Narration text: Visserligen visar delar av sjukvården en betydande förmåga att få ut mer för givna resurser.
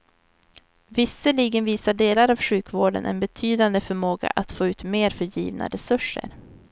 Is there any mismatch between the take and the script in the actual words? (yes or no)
no